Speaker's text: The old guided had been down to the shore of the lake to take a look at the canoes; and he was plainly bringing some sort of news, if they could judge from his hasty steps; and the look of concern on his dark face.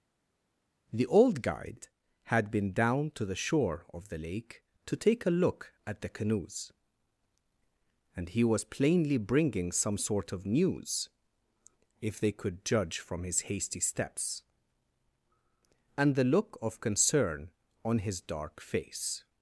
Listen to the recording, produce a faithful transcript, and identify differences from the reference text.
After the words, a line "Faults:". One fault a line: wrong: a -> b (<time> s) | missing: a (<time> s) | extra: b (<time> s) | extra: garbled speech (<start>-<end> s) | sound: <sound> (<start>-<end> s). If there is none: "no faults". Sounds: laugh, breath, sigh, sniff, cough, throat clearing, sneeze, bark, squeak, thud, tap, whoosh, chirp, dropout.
The old guide had been down to the shore of the lake to take a look at the canoes; and he was plainly bringing some sort of news, if they could judge from his hasty steps; and the look of concern on his dark face.
Faults:
wrong: guided -> guide (1.4 s)